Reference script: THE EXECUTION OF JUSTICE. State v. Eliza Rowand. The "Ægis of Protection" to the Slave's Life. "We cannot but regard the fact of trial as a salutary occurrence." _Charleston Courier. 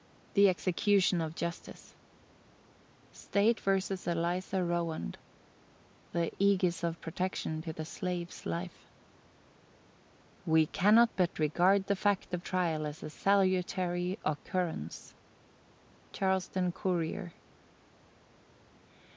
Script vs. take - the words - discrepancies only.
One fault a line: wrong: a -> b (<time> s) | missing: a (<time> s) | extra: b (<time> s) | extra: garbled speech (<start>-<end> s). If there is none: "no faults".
no faults